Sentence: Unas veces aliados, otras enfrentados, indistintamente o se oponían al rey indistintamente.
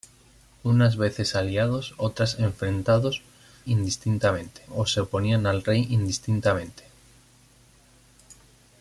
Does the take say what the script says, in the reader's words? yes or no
yes